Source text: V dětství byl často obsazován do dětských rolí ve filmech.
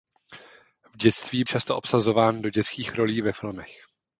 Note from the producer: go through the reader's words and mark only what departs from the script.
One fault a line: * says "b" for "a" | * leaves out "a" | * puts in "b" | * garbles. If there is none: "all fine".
* leaves out "byl"